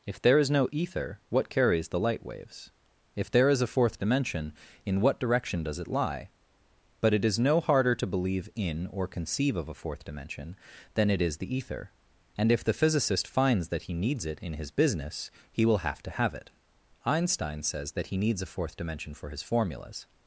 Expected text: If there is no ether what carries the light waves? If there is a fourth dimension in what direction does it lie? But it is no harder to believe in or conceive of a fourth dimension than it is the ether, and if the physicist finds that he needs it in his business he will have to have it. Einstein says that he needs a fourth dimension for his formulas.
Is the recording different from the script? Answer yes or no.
no